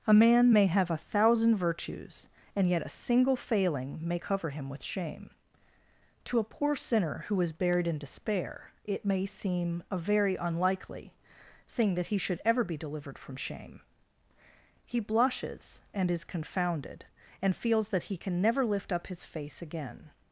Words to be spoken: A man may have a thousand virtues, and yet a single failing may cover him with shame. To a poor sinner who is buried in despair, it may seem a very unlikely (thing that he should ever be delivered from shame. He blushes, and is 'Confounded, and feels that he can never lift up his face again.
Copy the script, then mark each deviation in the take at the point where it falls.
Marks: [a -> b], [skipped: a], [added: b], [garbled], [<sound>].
A man may have a thousand virtues, and yet a single failing may cover him with shame. To a poor sinner who is buried in despair, it may seem a very unlikely (thing that he should ever be delivered from shame. He blushes, and is 'Confounded, and feels that he can never lift up his face again.